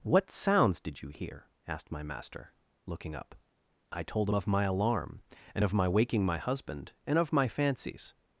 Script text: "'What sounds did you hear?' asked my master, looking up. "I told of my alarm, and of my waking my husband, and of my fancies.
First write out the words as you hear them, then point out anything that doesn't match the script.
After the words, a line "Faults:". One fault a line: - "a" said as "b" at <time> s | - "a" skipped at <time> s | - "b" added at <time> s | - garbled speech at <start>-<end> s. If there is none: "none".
"'What sounds did you hear?' asked my master, looking up. "I told of my alarm, and of my waking my husband, and of my fancies.
Faults:
none